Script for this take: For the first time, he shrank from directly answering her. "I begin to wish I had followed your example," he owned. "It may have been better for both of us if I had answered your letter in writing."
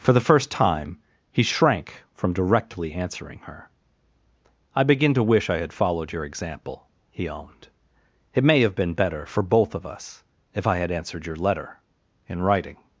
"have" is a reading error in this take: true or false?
false